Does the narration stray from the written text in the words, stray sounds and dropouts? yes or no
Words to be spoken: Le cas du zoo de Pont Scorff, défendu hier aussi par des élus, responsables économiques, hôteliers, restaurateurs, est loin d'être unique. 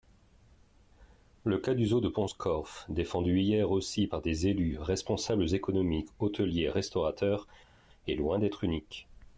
no